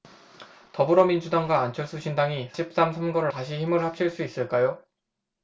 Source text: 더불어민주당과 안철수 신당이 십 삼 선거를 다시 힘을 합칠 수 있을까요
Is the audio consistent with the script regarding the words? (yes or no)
yes